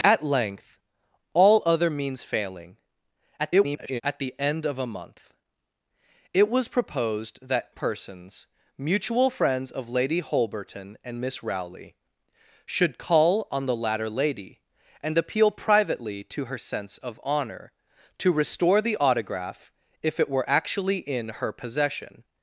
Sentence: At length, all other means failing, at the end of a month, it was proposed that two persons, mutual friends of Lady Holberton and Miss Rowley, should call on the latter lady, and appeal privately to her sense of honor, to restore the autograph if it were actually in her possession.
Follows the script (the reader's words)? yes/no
no